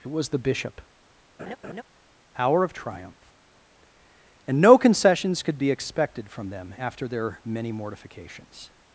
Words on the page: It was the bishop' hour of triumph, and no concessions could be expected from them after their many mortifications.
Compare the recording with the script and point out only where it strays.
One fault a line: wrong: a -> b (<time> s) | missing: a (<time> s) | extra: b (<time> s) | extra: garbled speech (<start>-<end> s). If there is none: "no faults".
no faults